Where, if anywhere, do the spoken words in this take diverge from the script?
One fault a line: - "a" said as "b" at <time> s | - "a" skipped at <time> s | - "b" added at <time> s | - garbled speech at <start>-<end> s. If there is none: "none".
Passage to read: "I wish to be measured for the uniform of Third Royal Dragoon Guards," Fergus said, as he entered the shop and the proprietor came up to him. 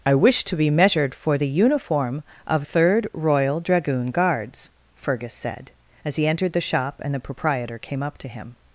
none